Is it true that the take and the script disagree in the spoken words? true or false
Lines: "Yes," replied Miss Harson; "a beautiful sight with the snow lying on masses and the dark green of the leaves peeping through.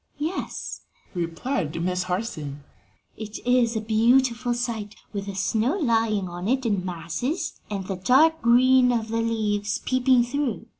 true